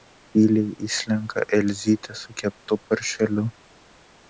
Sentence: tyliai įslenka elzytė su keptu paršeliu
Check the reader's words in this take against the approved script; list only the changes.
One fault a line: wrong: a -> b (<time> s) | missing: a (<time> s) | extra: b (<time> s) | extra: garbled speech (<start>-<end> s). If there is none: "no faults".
no faults